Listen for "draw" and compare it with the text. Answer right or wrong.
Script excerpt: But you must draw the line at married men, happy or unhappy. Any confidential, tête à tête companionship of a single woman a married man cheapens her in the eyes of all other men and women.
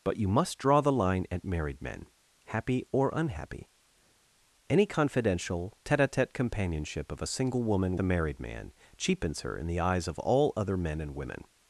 right